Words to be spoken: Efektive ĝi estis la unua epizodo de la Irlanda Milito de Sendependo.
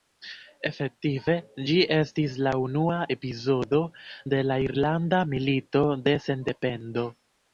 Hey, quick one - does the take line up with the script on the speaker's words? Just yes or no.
yes